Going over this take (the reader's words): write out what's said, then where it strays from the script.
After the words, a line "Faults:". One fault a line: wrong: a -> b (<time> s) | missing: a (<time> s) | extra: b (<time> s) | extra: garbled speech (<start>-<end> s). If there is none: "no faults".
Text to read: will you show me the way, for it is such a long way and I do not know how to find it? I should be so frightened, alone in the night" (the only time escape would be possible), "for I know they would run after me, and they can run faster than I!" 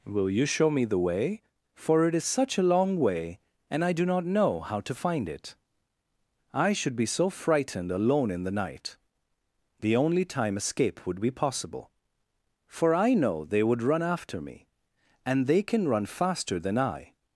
will you show me the way, for it is such a long way and I do not know how to find it? I should be so frightened, alone in the night" (the only time escape would be possible), "for I know they would run after me, and they can run faster than I!"
Faults:
no faults